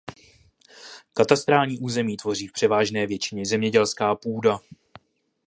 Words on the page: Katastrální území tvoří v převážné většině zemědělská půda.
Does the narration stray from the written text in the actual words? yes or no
no